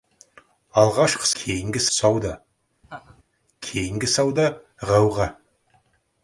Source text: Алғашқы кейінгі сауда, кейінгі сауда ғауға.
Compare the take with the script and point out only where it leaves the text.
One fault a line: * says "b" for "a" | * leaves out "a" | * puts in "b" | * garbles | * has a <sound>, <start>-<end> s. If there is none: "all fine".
* has a laugh, 2.8-3.2 s